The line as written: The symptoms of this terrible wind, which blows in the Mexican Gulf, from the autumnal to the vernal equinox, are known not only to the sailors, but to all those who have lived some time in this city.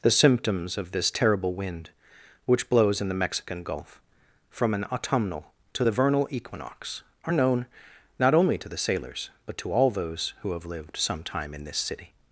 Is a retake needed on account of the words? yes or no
yes